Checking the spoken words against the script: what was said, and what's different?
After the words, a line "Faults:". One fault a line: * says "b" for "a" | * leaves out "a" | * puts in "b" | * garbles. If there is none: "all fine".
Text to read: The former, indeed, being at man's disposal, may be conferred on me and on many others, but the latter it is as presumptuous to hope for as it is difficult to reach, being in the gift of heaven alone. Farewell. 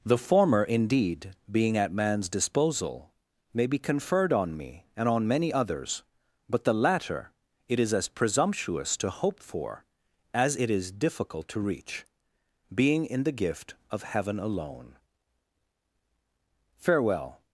The former, indeed, being at man's disposal, may be conferred on me and on many others, but the latter it is as presumptuous to hope for as it is difficult to reach, being in the gift of heaven alone. Farewell.
Faults:
all fine